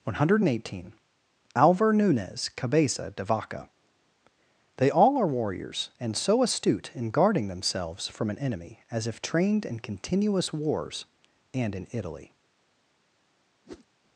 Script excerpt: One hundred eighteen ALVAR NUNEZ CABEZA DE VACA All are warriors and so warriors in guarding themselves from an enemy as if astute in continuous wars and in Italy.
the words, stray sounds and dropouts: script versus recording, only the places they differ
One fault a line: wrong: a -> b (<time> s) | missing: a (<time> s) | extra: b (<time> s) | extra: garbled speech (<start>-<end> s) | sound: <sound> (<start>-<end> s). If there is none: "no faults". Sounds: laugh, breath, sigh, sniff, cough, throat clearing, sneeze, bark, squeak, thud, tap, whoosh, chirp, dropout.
extra: They (4.8 s)
wrong: warriors -> astute (6.4 s)
wrong: astute -> trained (9.2 s)
sound: whoosh (13.6-13.9 s)